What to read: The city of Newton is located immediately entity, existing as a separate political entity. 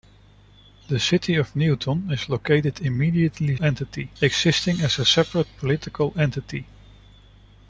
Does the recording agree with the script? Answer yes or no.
yes